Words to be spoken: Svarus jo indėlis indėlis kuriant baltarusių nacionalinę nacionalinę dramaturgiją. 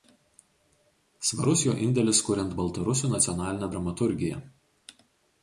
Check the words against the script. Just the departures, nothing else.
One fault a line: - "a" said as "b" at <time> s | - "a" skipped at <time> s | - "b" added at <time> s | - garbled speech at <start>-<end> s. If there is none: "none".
- "indėlis" skipped at 2.2 s
- "nacionalinę" skipped at 3.7 s